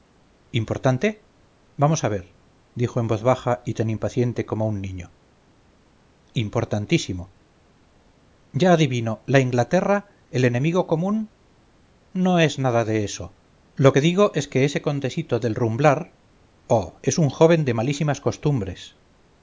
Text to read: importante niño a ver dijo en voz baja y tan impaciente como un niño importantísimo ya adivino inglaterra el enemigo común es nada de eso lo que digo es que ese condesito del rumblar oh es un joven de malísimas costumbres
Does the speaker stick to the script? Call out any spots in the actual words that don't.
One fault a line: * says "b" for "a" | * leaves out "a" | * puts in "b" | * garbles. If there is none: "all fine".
* says "vamos" for "niño"
* puts in "la"
* puts in "no"